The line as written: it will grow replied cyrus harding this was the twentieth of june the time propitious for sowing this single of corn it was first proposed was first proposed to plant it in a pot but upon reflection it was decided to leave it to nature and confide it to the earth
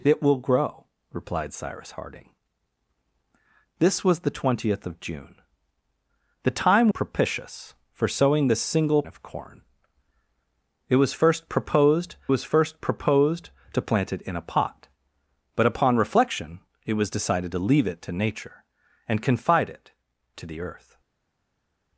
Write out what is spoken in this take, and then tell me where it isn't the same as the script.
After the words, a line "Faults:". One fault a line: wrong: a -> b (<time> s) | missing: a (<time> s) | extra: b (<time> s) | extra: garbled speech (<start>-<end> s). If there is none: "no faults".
it will grow replied cyrus harding this was the twentieth of june the time propitious for sowing this single of corn it was first proposed was first proposed to plant it in a pot but upon reflection it was decided to leave it to nature and confide it to the earth
Faults:
no faults